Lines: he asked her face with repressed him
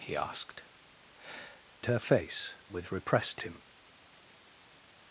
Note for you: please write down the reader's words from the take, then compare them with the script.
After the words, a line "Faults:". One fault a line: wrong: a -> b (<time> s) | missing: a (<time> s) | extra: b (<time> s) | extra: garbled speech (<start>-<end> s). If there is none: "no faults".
he asked her face with repressed him
Faults:
no faults